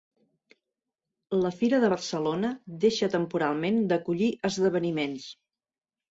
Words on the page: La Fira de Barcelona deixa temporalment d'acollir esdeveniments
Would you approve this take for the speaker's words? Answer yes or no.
yes